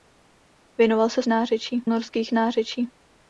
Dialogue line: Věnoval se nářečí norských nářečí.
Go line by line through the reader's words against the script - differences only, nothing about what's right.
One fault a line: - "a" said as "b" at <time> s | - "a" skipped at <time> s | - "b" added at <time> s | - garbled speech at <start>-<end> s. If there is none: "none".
none